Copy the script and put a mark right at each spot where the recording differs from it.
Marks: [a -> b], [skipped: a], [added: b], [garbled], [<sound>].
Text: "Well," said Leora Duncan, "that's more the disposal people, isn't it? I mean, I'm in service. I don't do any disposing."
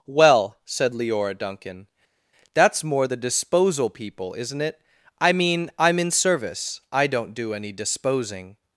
"Well," said Leora Duncan, "that's more the disposal people, isn't it? I mean, I'm in service. I don't do any disposing."